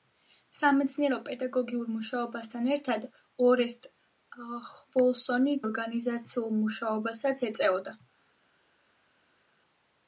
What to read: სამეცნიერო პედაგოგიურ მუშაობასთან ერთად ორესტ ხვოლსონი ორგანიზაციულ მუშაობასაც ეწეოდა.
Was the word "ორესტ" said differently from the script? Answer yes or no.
no